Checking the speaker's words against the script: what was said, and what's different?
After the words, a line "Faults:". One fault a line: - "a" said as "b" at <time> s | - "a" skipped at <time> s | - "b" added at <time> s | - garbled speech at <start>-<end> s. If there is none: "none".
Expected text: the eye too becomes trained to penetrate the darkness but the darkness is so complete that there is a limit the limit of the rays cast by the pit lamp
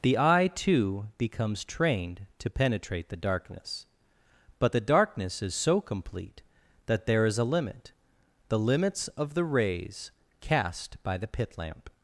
the eye too becomes trained to penetrate the darkness but the darkness is so complete that there is a limit the limits of the rays cast by the pit lamp
Faults:
- "limit" said as "limits" at 8.6 s